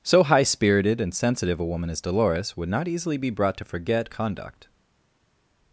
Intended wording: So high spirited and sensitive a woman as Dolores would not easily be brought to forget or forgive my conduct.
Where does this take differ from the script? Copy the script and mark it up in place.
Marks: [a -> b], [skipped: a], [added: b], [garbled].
So high spirited and sensitive a woman as Dolores would not easily be brought to forget [skipped: or forgive my] conduct.